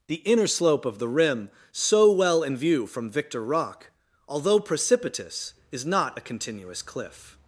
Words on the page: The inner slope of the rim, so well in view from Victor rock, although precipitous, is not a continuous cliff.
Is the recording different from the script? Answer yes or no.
no